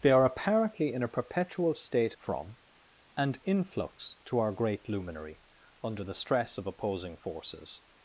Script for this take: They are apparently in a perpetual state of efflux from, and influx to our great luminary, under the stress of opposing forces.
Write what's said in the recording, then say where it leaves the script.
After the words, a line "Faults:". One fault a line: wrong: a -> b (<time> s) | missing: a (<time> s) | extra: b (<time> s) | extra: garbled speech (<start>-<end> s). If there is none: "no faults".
They are apparently in a perpetual state from, and influx to our great luminary, under the stress of opposing forces.
Faults:
missing: of efflux (2.1 s)